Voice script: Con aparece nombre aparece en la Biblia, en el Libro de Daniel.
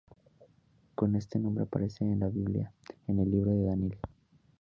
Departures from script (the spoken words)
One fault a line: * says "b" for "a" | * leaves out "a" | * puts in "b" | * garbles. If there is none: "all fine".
* says "este" for "aparece"